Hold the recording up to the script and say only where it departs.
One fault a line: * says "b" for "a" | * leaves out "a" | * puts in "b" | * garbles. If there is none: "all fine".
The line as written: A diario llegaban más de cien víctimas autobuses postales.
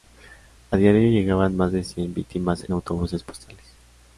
all fine